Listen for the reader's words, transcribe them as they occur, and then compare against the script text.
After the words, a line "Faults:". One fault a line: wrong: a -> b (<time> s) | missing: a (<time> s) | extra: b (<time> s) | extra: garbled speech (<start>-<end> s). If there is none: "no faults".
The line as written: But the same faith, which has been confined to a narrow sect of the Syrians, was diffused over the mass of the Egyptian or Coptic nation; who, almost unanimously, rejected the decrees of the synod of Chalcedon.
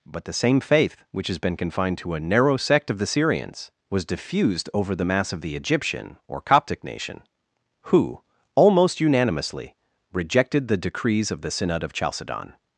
But the same faith, which has been confined to a narrow sect of the Syrians, was diffused over the mass of the Egyptian or Coptic nation; who, almost unanimously, rejected the decrees of the synod of Chalcedon.
Faults:
no faults